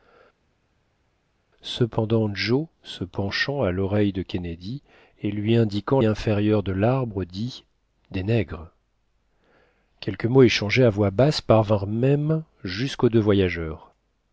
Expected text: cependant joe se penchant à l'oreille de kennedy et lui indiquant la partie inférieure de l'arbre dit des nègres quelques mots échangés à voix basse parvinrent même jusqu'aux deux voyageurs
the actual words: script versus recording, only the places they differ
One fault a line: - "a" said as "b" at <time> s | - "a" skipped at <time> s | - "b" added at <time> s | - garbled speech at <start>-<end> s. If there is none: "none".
- "la partie" skipped at 6.0 s